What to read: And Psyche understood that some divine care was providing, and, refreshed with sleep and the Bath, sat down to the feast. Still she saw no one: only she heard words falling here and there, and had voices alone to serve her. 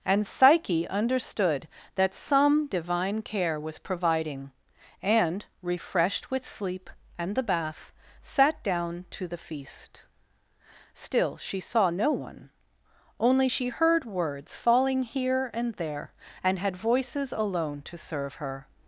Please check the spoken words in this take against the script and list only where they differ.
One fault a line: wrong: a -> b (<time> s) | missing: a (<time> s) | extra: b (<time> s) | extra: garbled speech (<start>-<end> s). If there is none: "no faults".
no faults